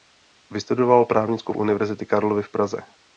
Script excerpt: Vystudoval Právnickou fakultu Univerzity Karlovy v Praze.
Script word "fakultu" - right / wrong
wrong